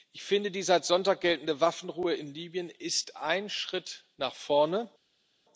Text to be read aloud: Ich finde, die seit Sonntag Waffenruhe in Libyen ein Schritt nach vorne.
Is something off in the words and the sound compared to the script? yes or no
yes